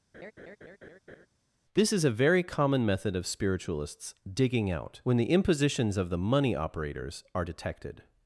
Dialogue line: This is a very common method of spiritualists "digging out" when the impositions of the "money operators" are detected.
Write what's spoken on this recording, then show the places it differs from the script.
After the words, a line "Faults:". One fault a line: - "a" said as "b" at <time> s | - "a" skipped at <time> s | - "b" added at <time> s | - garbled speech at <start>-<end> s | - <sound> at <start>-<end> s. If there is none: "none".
This is a very common method of spiritualists "digging out" when the impositions of the "money operators" are detected.
Faults:
- laugh at 0.1-1.3 s